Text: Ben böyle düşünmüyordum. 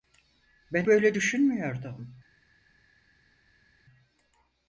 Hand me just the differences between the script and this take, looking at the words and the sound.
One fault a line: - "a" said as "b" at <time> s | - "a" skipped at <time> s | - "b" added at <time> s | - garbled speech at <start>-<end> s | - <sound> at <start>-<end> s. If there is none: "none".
none